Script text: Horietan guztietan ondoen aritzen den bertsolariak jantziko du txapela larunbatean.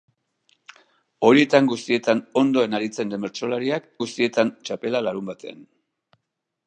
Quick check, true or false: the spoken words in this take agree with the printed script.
false